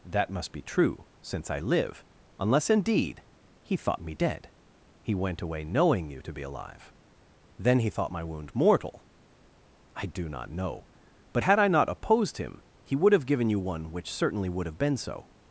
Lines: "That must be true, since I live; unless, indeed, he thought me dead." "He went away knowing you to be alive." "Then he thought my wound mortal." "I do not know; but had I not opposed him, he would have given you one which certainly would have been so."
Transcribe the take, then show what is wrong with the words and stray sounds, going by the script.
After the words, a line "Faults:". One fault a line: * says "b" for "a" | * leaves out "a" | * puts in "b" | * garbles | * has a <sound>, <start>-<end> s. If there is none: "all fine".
"That must be true, since I live; unless, indeed, he thought me dead." "He went away knowing you to be alive." "Then he thought my wound mortal." "I do not know; but had I not opposed him, he would have given you one which certainly would have been so."
Faults:
all fine